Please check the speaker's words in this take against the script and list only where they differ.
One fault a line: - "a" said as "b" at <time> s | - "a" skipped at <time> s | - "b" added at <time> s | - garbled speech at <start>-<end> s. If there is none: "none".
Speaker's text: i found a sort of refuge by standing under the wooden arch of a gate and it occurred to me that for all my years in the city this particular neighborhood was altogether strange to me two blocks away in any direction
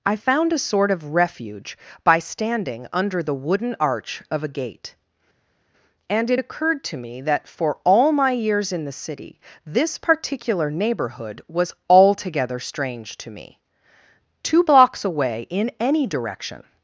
none